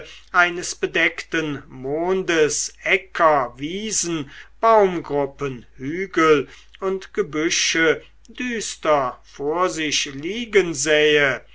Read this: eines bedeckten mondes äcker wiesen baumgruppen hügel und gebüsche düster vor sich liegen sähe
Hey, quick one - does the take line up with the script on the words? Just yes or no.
yes